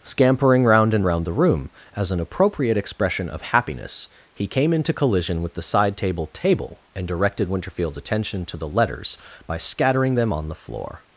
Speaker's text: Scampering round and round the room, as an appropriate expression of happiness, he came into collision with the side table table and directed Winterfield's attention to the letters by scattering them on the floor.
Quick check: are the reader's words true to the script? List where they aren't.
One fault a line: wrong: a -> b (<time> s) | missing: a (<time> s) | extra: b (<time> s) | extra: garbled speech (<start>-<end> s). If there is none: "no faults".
no faults